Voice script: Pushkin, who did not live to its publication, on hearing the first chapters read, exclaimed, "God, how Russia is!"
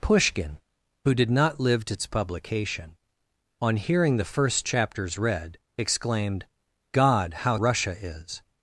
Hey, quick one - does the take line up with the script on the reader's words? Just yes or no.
yes